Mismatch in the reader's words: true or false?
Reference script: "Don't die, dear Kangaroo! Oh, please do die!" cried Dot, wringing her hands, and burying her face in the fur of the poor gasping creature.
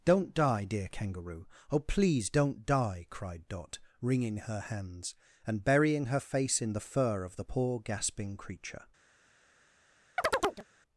true